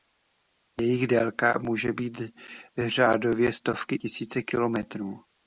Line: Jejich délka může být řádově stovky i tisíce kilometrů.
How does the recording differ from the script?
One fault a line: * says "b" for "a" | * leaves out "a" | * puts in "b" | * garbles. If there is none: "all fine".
* leaves out "i"